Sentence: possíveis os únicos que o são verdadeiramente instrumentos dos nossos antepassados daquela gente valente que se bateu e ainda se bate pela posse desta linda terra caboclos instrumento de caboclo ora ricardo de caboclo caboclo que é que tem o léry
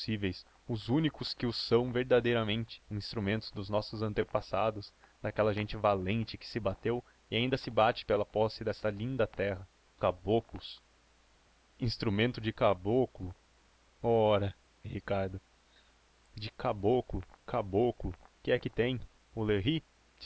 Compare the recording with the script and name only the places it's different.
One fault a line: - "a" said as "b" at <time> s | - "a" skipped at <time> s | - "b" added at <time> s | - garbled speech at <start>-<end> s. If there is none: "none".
none